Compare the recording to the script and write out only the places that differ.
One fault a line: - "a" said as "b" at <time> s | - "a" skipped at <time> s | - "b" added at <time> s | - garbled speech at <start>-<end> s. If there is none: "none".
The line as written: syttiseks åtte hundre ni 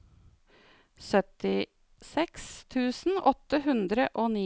- "tusen" added at 2.7 s
- "og" added at 4.1 s